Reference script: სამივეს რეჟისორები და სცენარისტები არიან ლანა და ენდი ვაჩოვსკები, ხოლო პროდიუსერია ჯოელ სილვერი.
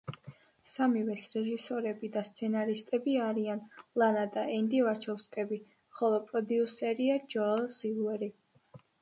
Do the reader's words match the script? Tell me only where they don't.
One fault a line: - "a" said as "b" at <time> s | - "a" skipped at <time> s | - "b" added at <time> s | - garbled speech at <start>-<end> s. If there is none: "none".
none